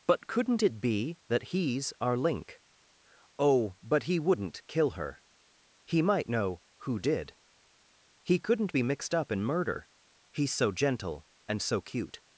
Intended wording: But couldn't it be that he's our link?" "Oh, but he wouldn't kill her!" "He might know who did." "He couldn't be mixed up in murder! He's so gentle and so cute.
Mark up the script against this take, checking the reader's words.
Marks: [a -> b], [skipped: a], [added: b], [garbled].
But couldn't it be that he's our link?" "Oh, but he wouldn't kill her!" "He might know who did." "He couldn't be mixed up in murder! He's so gentle and so cute.